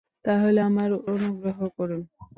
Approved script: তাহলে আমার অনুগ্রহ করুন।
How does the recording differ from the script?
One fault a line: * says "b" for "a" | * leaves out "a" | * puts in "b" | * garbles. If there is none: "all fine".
all fine